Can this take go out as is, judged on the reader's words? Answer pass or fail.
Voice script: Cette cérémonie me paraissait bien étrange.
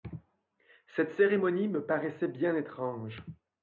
pass